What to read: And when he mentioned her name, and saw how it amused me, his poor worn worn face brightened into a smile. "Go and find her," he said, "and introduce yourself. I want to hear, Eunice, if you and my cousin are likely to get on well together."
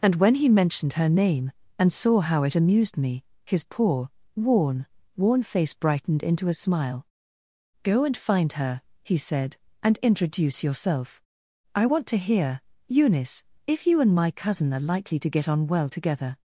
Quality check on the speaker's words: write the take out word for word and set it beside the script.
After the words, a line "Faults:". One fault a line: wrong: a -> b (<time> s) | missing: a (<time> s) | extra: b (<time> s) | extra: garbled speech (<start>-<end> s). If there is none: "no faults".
And when he mentioned her name, and saw how it amused me, his poor worn worn face brightened into a smile. "Go and find her," he said, "and introduce yourself. I want to hear, Eunice, if you and my cousin are likely to get on well together."
Faults:
no faults